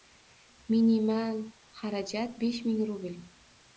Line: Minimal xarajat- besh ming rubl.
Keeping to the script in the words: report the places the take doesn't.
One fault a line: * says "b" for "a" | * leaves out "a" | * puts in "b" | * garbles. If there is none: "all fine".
all fine